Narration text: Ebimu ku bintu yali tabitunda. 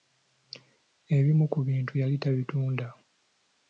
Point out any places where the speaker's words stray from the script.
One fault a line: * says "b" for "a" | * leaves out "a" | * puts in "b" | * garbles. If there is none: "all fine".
all fine